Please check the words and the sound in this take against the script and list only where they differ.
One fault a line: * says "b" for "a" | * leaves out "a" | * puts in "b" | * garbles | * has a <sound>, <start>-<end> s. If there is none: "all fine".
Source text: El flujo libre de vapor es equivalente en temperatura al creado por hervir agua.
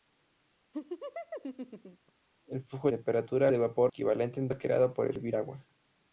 * has a laugh, 0.7-2.1 s
* says "temperatura" for "libre"
* leaves out "es"
* leaves out "temperatura"